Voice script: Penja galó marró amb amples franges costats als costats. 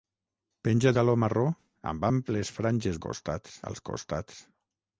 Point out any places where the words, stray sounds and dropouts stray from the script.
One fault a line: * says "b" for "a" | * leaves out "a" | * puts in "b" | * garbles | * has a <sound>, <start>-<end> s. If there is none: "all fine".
all fine